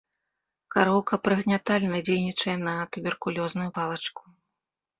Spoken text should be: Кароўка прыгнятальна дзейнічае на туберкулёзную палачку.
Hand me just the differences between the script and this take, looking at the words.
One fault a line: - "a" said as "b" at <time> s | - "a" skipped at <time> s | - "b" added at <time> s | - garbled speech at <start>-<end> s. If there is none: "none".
none